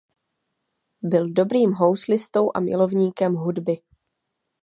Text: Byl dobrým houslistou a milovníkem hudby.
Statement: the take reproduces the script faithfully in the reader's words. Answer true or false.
true